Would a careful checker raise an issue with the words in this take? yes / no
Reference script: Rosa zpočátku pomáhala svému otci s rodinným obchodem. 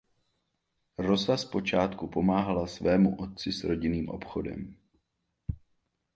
no